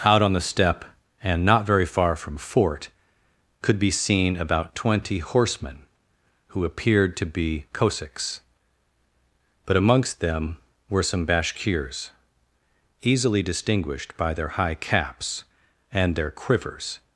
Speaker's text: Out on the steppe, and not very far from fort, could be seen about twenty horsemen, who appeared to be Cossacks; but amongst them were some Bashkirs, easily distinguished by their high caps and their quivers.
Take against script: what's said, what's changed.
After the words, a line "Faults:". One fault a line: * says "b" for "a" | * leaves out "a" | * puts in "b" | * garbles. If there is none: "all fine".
Out on the steppe, and not very far from fort, could be seen about twenty horsemen, who appeared to be Cossacks; but amongst them were some Bashkirs, easily distinguished by their high caps and their quivers.
Faults:
all fine